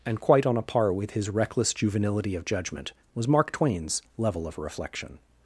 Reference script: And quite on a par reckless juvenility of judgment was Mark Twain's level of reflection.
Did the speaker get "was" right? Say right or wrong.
right